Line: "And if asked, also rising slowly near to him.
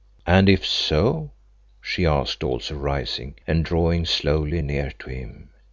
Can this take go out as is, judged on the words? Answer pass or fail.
fail